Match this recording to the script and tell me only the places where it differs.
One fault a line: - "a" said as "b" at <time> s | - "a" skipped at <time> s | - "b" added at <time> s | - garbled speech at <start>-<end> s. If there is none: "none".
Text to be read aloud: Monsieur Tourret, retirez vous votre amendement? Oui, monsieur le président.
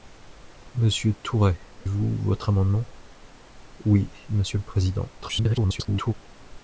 - "retirez" skipped at 1.6 s
- garbled speech at 5.2-6.1 s